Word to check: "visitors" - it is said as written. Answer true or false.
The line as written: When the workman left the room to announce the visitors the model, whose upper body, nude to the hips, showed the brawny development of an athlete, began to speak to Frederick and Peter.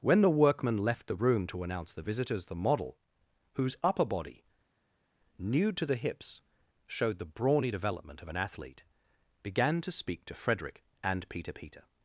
true